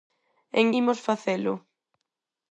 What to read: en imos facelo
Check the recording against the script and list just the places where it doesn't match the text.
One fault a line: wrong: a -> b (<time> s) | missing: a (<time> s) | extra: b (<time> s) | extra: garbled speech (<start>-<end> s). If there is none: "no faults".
no faults